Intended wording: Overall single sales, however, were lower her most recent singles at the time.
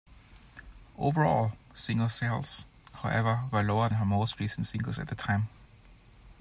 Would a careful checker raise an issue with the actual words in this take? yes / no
no